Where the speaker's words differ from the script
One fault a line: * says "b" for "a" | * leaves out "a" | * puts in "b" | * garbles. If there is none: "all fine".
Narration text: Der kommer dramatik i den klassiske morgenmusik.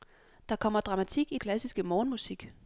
* leaves out "den"